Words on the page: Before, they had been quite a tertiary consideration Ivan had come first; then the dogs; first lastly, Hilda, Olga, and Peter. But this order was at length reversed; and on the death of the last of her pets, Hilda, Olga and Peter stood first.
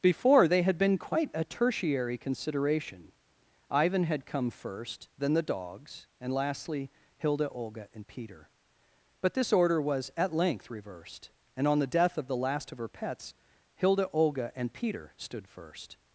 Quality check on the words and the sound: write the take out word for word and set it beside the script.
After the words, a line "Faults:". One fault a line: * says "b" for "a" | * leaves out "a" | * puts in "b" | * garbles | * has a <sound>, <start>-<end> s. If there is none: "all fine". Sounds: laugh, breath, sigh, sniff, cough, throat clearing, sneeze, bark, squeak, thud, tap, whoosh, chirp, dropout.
Before, they had been quite a tertiary consideration Ivan had come first; then the dogs; and lastly, Hilda, Olga, and Peter. But this order was at length reversed; and on the death of the last of her pets, Hilda, Olga and Peter stood first.
Faults:
* says "and" for "first"